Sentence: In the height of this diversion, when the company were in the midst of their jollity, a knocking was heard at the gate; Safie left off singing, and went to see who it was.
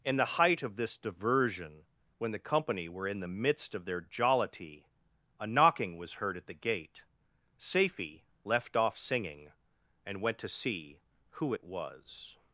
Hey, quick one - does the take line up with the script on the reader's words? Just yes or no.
yes